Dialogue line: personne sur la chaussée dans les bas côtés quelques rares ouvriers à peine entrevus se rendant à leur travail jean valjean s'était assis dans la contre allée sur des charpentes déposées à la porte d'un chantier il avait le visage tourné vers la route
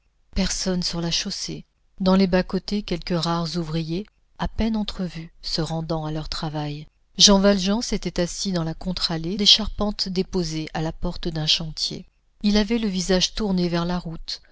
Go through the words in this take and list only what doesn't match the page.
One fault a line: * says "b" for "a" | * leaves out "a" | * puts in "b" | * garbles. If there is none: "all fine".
* leaves out "sur"